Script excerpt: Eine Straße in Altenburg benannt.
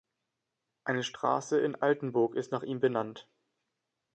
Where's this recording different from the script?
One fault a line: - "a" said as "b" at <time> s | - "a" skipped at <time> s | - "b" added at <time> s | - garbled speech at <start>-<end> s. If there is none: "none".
- "ist nach ihm" added at 2.4 s